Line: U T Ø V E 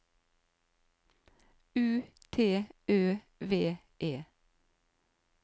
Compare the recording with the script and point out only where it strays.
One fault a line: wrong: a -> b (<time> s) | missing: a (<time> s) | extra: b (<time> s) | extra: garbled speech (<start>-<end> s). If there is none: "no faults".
no faults